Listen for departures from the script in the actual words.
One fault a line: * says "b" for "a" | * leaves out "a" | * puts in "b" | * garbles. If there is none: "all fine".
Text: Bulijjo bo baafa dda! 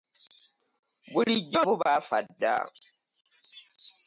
all fine